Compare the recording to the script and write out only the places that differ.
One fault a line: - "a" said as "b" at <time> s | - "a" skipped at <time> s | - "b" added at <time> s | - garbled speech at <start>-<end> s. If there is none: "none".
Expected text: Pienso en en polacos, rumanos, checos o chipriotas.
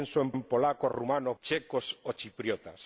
none